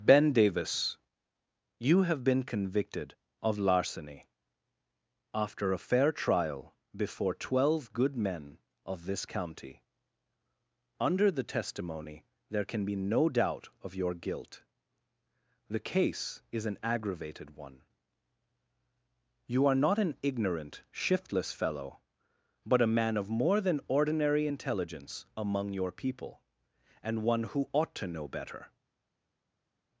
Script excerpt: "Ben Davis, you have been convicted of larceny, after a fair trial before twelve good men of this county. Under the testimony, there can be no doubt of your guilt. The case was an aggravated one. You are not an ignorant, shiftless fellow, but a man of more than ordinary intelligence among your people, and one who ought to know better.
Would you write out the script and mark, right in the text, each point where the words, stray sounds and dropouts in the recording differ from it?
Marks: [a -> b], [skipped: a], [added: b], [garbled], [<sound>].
"Ben Davis, you have been convicted of larceny, after a fair trial before twelve good men of this county. Under the testimony, there can be no doubt of your guilt. The case [was -> is] an aggravated one. You are not an ignorant, shiftless fellow, but a man of more than ordinary intelligence among your people, and one who ought to know better.